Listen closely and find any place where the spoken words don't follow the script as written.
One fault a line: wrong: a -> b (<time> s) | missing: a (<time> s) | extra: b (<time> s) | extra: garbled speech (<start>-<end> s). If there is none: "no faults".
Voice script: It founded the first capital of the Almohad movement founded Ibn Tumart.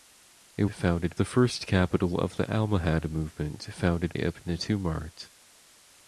no faults